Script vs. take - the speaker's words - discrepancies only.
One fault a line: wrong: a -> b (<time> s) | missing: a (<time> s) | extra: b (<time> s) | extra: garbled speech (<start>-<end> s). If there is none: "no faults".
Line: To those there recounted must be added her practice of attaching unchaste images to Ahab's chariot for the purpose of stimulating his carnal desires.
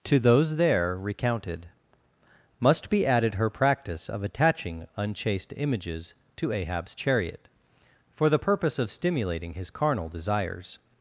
no faults